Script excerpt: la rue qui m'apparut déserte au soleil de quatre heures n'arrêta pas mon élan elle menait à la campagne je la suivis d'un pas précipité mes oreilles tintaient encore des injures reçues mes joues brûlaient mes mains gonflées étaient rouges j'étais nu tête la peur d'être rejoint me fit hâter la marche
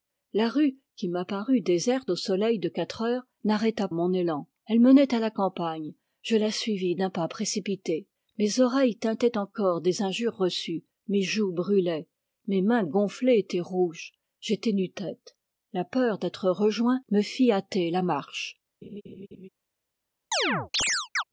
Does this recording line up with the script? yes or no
no